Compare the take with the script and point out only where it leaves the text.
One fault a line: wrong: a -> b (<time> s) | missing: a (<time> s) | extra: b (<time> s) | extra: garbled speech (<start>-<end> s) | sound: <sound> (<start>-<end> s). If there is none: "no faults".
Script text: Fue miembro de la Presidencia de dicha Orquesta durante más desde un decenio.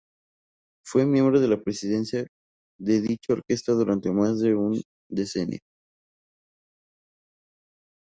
wrong: desde -> de (4.4 s)